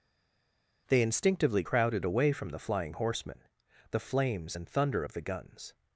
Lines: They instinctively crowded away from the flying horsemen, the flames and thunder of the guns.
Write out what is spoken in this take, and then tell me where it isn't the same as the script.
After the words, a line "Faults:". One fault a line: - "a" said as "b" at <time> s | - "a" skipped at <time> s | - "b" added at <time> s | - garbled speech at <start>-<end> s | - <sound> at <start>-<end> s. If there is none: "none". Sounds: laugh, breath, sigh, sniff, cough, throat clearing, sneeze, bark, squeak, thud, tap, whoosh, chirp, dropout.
They instinctively crowded away from the flying horsemen, the flames and thunder of the guns.
Faults:
none